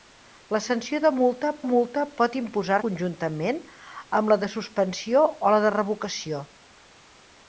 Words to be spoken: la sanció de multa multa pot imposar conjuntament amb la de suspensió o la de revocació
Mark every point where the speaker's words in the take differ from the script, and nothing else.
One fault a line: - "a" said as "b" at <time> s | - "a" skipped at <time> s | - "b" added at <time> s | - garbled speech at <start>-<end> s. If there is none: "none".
none